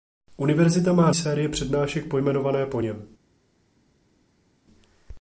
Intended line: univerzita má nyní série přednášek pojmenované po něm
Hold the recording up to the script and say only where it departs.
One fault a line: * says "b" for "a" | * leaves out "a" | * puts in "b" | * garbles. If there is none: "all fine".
* leaves out "nyní"